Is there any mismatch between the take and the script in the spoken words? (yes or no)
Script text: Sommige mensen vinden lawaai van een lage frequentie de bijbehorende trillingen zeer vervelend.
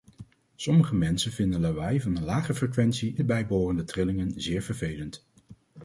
no